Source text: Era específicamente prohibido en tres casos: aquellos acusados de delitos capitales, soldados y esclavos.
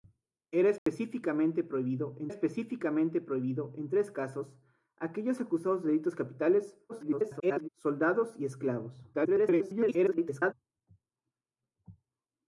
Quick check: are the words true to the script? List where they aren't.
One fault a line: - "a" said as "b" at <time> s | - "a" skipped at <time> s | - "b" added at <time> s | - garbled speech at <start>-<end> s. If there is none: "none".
- "específicamente prohibido en" added at 2.3 s
- garbled speech at 6.9-7.7 s
- garbled speech at 9.1-10.5 s